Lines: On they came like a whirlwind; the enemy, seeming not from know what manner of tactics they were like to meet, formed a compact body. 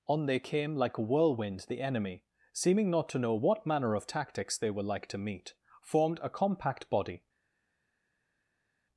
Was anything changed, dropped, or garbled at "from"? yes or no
yes